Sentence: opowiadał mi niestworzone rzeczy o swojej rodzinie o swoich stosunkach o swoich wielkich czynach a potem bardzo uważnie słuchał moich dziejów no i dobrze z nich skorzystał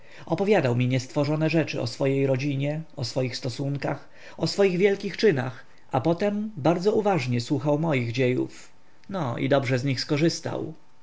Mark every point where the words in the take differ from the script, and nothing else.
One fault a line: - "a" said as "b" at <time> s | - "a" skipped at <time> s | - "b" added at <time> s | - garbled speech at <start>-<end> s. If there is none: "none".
none